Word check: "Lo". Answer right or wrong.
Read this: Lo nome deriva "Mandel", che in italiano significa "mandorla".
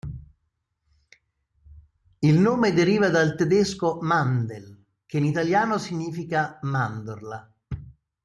wrong